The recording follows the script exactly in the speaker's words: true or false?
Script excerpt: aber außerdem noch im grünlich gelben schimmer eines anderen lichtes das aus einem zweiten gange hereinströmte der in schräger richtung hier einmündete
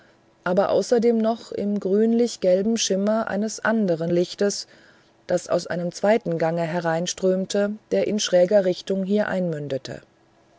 true